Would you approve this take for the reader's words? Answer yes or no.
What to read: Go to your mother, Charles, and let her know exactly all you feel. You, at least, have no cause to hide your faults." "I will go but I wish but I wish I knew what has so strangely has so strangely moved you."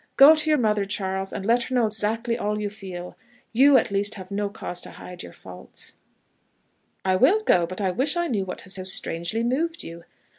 no